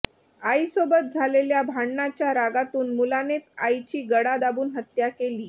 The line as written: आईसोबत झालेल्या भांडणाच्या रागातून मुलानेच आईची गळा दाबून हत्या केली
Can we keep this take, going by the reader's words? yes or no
yes